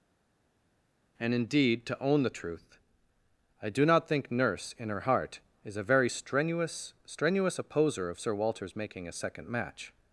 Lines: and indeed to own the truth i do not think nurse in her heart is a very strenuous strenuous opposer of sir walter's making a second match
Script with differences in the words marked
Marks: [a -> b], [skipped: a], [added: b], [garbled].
and indeed to own the truth i do not think nurse in her heart is a very strenuous strenuous opposer of sir walter's making a second match